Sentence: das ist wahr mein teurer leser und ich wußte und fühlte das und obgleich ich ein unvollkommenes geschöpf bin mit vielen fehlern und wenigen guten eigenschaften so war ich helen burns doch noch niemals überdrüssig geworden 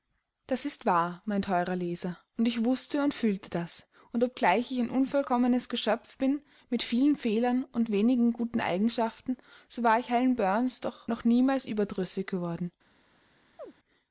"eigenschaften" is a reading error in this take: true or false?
false